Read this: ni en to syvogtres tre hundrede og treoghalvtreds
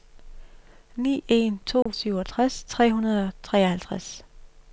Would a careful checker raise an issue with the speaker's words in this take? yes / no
no